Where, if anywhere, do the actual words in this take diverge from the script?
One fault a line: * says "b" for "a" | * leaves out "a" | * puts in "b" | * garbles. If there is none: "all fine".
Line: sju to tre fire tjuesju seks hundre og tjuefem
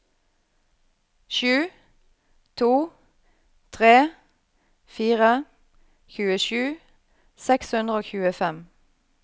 all fine